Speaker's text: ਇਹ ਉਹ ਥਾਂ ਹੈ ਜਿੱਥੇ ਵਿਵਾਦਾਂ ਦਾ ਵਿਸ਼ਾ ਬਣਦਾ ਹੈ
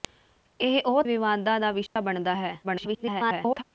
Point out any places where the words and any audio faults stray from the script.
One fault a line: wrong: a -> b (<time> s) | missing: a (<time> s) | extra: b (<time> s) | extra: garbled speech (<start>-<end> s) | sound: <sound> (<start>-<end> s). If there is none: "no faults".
missing: ਥਾਂ ਹੈ ਜਿੱਥੇ (1.0 s)
sound: dropout (1.9-2.0 s)
extra: garbled speech (2.6-3.6 s)